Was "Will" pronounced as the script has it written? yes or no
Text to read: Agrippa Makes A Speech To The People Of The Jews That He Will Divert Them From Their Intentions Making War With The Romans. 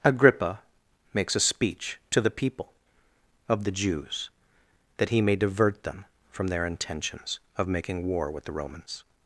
no